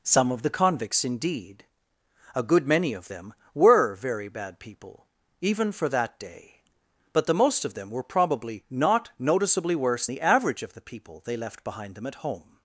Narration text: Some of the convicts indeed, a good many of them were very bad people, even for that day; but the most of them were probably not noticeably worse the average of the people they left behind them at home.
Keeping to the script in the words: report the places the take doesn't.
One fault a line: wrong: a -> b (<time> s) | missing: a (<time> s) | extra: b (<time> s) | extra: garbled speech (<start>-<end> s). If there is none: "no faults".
no faults